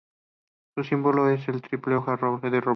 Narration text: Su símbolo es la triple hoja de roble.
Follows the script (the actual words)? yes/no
yes